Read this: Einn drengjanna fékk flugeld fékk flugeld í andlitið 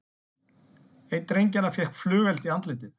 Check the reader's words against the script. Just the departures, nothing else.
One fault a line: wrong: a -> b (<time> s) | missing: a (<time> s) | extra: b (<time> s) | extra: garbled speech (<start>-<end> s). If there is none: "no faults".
missing: fékk flugeld (2.5 s)